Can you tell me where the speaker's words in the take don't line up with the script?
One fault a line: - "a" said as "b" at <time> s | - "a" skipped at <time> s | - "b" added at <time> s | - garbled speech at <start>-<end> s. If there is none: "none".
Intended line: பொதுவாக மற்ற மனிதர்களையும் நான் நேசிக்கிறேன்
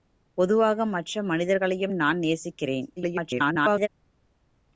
- garbled speech at 3.0-3.9 s